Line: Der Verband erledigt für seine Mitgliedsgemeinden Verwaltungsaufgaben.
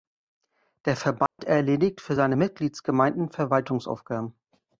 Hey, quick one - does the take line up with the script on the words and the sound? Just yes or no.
no